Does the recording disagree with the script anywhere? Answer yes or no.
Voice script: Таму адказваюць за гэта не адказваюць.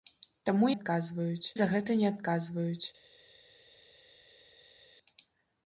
no